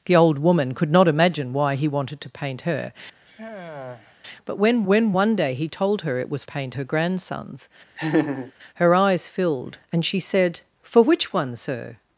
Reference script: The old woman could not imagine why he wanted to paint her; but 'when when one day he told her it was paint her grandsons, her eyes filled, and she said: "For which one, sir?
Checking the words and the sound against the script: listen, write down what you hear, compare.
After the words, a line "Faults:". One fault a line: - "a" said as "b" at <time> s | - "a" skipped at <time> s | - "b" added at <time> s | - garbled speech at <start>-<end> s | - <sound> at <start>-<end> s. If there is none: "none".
The old woman could not imagine why he wanted to paint her; but 'when when one day he told her it was paint her grandsons, her eyes filled, and she said: "For which one, sir?
Faults:
- sigh at 3.3-4.2 s
- laugh at 8.0-8.5 s